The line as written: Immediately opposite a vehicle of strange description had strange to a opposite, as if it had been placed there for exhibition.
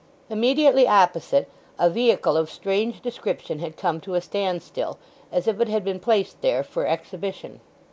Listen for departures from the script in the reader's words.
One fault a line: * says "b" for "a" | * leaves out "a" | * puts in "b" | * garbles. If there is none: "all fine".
* says "come" for "strange"
* says "standstill" for "opposite"